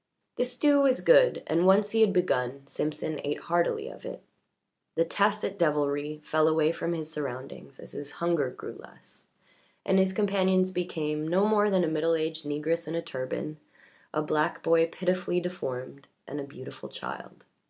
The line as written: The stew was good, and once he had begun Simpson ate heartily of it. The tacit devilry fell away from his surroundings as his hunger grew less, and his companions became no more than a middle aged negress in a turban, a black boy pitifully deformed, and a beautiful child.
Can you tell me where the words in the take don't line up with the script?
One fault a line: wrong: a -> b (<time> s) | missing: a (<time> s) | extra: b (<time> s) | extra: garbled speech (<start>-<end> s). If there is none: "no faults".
no faults